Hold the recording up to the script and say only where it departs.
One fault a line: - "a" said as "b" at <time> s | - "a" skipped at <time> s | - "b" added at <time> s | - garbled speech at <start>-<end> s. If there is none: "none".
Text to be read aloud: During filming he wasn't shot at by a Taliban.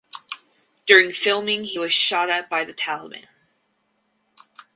- "wasn't" said as "was" at 1.8 s
- "a" said as "the" at 2.6 s